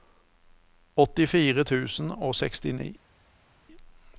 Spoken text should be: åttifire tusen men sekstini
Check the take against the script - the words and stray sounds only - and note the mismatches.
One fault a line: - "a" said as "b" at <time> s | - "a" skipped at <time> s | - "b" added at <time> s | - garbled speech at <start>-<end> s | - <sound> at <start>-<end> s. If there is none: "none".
- "men" said as "og" at 2.1 s